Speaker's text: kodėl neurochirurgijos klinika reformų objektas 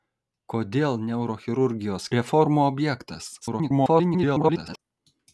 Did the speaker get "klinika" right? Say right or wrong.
wrong